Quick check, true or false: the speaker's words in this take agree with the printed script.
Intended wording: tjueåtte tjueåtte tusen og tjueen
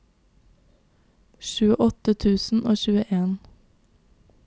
false